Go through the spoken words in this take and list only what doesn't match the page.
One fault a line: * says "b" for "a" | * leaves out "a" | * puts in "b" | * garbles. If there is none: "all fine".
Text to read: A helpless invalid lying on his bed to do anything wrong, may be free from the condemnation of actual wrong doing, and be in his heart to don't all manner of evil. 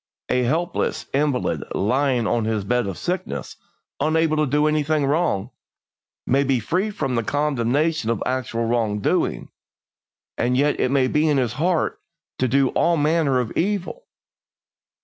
* puts in "of sickness unable"
* puts in "yet it may"
* says "do" for "don't"